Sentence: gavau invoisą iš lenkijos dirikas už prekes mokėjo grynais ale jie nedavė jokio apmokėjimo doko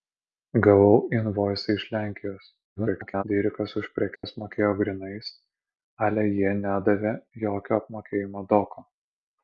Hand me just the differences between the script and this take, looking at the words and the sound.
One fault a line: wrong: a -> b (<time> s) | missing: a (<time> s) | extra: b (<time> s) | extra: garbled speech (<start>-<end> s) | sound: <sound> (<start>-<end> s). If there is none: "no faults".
extra: garbled speech (2.8-3.2 s)
sound: dropout (4.2-4.2 s)